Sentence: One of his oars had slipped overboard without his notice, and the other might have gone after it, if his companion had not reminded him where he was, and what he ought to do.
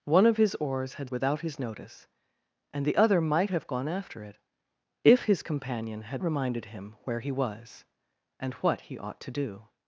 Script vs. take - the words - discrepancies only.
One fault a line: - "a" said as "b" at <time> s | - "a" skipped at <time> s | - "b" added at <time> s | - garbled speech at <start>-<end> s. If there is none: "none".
- "slipped overboard" skipped at 1.1 s
- "not" skipped at 6.2 s